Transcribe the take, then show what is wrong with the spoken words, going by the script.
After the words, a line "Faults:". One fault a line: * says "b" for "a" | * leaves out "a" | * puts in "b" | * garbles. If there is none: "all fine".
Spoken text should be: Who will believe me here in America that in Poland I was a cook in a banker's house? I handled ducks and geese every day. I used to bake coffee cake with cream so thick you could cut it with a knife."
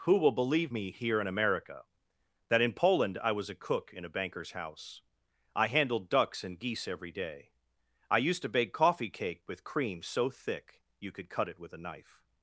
Who will believe me here in America that in Poland I was a cook in a banker's house? I handled ducks and geese every day. I used to bake coffee cake with cream so thick you could cut it with a knife."
Faults:
all fine